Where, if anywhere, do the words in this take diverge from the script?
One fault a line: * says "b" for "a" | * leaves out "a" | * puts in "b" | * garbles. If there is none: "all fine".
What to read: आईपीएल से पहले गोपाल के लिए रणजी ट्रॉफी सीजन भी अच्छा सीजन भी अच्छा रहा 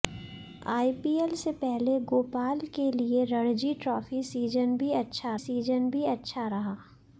all fine